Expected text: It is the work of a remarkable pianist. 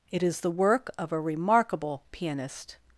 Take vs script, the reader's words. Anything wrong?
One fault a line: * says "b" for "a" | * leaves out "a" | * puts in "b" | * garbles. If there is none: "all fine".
all fine